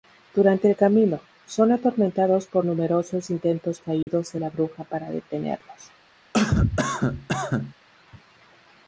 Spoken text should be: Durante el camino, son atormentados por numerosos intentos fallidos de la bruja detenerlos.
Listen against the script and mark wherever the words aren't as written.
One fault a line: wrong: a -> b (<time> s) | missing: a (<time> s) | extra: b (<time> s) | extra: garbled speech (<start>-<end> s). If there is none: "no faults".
extra: para (4.8 s)